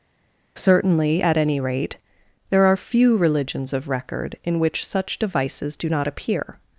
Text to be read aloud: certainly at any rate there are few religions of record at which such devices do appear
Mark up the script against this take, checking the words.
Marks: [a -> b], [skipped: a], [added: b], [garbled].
certainly at any rate there are few religions of record [at -> in] which such devices do [added: not] appear